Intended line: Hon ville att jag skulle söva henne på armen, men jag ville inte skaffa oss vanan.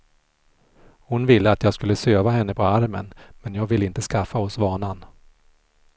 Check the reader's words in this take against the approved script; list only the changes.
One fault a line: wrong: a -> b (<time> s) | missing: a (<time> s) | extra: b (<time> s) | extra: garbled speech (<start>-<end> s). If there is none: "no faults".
no faults